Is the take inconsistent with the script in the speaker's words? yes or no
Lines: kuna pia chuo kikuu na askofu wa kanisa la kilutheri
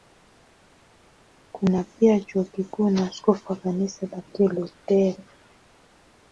no